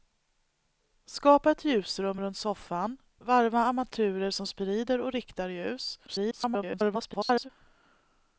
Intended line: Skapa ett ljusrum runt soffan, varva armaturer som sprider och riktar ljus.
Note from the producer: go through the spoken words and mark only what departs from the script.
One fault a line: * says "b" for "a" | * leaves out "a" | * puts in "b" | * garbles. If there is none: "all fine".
* garbles